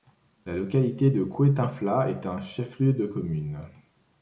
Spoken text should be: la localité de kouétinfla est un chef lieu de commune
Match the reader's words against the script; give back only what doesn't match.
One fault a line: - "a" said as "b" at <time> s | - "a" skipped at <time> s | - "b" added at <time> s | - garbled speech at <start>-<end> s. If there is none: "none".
none